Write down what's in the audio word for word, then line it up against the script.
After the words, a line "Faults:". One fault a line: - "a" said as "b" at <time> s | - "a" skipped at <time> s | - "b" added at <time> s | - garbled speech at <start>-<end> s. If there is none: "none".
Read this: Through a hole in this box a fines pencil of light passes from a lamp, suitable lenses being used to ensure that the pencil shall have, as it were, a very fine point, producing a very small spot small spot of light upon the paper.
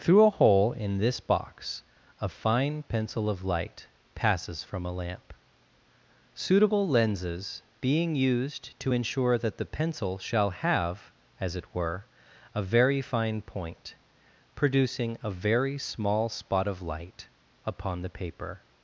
Through a hole in this box a fine pencil of light passes from a lamp, suitable lenses being used to ensure that the pencil shall have, as it were, a very fine point, producing a very small spot of light upon the paper.
Faults:
- "fines" said as "fine" at 2.3 s
- "small spot" skipped at 16.7 s